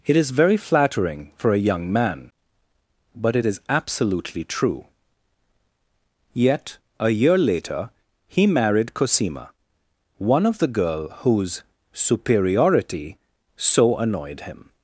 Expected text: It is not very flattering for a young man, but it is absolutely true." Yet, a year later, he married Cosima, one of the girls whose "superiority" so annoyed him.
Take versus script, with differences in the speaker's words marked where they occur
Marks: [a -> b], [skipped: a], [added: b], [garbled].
It is [skipped: not] very flattering for a young man, but it is absolutely true." Yet, a year later, he married Cosima, one of the [girls -> girl] whose "superiority" so annoyed him.